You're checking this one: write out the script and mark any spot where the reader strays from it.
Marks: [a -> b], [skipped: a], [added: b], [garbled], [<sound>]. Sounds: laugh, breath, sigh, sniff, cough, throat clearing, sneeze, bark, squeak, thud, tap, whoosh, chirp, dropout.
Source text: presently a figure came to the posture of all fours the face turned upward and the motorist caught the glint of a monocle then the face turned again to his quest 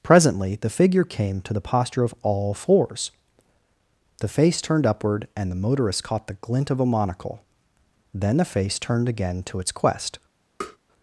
presently [a -> the] figure came to the posture of all fours the face turned upward and the motorist caught the glint of a monocle then the face turned again to [his -> its] quest [tap]